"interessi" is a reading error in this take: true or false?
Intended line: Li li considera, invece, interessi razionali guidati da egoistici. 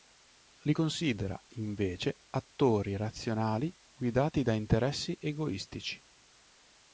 true